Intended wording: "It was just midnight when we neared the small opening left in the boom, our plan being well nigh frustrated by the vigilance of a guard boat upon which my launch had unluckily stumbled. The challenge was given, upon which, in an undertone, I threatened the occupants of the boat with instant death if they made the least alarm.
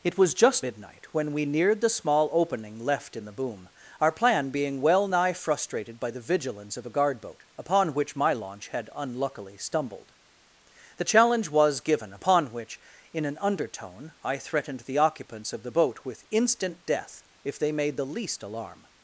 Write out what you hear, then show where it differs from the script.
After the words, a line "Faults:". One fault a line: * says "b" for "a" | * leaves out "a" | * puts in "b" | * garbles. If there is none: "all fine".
"It was just midnight when we neared the small opening left in the boom, our plan being well nigh frustrated by the vigilance of a guard boat upon which my launch had unluckily stumbled. The challenge was given, upon which, in an undertone, I threatened the occupants of the boat with instant death if they made the least alarm.
Faults:
all fine